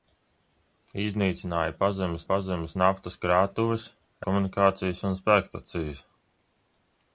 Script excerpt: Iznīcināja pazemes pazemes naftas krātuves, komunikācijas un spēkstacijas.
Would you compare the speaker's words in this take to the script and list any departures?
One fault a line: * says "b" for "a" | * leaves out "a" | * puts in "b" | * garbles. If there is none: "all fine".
all fine